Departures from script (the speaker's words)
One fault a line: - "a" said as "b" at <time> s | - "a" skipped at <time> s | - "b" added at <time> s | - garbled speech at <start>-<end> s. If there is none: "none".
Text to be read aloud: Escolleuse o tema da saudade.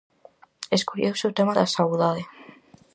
none